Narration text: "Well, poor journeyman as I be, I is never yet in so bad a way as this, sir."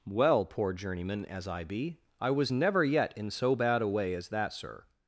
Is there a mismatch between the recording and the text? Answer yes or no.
yes